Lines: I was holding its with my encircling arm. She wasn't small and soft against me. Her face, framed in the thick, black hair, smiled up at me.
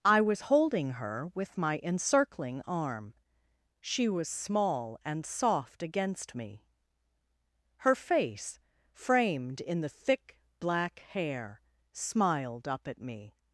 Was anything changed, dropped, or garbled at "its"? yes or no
yes